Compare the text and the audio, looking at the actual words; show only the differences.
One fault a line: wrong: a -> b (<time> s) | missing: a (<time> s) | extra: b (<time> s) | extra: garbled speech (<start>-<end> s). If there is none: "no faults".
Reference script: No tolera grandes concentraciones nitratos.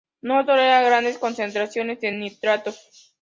extra: de (2.0 s)